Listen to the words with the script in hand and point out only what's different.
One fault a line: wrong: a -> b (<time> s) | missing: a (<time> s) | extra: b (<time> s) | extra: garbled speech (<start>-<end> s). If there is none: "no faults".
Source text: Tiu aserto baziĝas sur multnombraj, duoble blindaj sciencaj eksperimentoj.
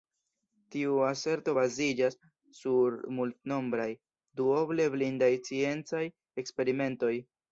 no faults